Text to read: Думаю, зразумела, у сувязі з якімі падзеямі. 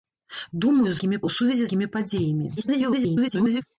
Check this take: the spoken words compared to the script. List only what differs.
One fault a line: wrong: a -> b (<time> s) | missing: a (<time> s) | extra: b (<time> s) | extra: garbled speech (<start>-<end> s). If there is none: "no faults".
wrong: зразумела -> якімі (1.0 s)
missing: з (1.7 s)
extra: garbled speech (2.6-3.6 s)